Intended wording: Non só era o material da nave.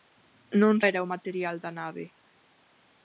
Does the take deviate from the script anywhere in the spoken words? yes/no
yes